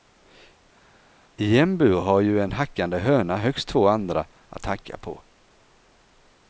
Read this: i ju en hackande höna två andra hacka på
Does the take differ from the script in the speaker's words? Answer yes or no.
yes